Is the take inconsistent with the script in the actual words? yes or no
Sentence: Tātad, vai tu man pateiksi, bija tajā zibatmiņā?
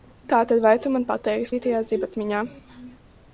no